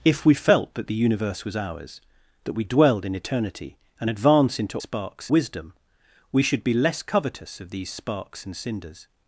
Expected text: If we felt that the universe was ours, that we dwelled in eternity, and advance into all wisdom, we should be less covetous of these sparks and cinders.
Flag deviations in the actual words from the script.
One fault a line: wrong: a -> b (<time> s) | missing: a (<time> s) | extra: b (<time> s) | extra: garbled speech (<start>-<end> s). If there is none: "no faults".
wrong: all -> sparks (4.8 s)